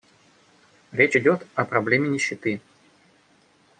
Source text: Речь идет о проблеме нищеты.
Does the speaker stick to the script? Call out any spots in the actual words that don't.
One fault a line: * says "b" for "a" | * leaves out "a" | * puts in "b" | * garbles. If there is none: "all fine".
all fine